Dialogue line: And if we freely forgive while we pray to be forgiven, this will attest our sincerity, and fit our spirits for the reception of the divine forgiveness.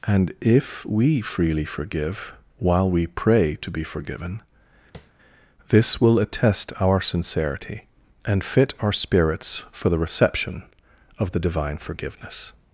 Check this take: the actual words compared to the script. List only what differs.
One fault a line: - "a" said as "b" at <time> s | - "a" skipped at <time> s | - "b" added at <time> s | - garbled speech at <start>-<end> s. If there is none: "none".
none